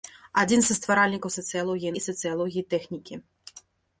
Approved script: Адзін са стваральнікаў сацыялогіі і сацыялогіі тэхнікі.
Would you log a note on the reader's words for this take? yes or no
no